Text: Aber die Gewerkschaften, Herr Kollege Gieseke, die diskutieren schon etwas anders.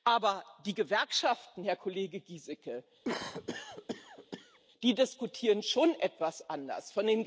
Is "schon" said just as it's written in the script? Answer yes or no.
yes